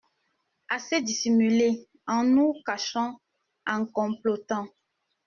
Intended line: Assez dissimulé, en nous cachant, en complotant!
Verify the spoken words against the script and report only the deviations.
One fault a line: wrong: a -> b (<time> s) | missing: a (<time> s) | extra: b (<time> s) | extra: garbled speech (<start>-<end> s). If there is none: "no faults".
no faults